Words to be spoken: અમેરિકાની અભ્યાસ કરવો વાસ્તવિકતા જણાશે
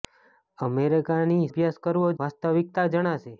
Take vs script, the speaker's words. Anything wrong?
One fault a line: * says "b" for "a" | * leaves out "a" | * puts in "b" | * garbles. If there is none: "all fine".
all fine